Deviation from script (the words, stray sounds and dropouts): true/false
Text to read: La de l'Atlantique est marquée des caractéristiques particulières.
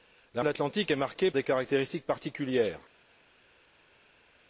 false